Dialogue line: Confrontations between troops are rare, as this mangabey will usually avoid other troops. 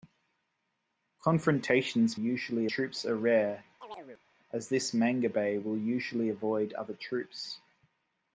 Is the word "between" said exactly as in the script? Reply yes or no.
no